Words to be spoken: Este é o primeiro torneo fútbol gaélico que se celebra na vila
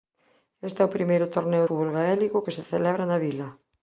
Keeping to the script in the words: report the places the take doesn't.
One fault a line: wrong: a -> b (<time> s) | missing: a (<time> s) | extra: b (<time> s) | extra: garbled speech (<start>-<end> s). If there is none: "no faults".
no faults